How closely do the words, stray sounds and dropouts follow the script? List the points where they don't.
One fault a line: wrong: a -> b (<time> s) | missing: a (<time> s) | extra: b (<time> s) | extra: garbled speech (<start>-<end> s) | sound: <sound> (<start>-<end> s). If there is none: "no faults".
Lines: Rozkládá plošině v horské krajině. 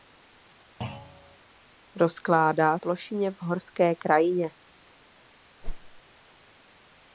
sound: thud (0.8-1.4 s)
sound: whoosh (5.6-6.0 s)